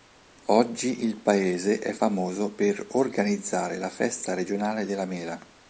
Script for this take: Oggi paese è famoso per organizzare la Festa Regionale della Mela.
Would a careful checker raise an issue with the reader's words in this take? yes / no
yes